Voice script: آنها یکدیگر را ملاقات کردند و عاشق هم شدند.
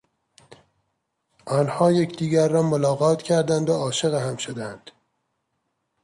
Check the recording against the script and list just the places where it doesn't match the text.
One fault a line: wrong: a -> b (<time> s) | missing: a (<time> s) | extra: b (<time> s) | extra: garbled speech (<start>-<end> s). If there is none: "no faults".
no faults